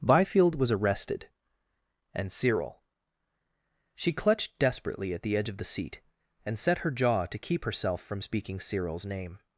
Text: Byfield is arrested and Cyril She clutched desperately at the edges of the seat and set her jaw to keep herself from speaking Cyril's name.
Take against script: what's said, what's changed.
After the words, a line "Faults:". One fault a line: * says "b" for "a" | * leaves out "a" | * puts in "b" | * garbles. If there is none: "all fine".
Byfield was arrested and Cyril She clutched desperately at the edge of the seat and set her jaw to keep herself from speaking Cyril's name.
Faults:
* says "was" for "is"
* says "edge" for "edges"